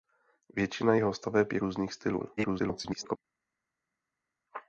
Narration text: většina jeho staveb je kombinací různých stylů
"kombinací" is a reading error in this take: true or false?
true